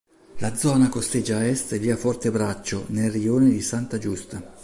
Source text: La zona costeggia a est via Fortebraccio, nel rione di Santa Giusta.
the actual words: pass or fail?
pass